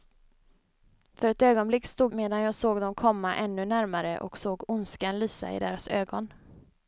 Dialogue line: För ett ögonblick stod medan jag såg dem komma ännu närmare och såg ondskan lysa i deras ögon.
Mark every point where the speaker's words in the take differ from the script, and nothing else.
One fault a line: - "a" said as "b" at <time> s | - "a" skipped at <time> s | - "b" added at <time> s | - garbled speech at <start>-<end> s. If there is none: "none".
none